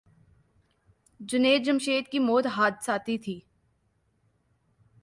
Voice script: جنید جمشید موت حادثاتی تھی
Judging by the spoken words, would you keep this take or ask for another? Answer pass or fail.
fail